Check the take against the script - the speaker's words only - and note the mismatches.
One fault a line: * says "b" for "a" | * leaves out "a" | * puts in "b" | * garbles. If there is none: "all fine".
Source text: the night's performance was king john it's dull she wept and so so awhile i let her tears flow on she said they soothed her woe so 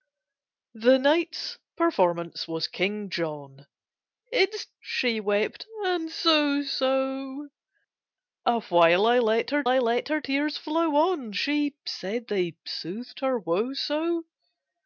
* leaves out "dull"
* puts in "i let her"